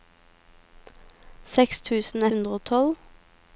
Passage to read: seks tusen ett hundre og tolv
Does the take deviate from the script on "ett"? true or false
true